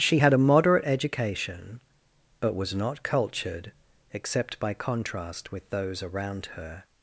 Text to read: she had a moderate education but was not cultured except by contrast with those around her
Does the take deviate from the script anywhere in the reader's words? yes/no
no